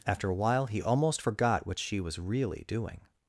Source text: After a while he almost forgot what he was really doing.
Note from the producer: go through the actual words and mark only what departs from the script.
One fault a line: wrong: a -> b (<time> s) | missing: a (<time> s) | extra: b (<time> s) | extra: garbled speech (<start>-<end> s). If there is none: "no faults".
wrong: he -> she (1.8 s)